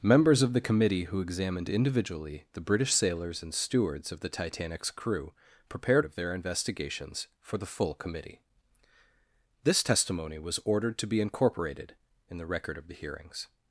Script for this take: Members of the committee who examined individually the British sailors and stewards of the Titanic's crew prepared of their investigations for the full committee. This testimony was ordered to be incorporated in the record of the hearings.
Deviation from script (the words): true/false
false